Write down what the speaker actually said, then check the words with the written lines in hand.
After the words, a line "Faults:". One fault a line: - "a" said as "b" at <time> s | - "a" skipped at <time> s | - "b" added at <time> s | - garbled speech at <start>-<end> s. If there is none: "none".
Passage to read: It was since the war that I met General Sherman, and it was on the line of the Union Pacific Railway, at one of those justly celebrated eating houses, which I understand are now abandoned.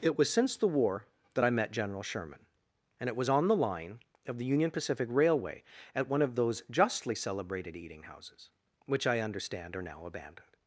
It was since the war that I met General Sherman, and it was on the line of the Union Pacific Railway, at one of those justly celebrated eating houses, which I understand are now abandoned.
Faults:
none